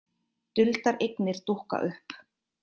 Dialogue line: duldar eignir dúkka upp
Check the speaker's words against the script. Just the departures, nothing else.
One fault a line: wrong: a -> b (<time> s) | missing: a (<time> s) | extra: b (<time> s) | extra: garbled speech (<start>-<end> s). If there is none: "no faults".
no faults